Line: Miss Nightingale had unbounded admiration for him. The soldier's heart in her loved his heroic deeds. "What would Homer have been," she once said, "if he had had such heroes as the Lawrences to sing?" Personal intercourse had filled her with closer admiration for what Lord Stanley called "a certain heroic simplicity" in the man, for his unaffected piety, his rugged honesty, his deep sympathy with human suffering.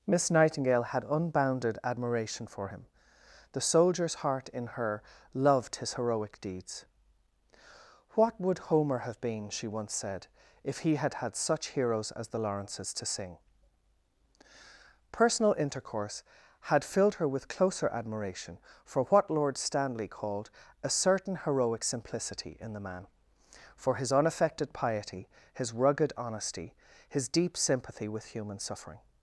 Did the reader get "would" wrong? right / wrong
right